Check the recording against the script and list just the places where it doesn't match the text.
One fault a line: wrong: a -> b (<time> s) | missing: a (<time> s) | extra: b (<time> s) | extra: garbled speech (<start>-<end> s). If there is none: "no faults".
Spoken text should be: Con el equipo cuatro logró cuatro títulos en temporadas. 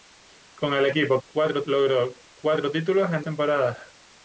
no faults